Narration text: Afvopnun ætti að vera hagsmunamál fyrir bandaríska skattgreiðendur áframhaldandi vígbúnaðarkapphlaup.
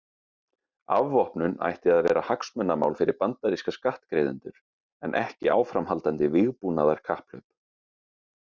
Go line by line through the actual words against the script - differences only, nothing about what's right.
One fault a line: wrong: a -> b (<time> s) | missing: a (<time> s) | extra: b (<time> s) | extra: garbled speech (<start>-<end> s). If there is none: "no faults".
extra: en ekki (5.1 s)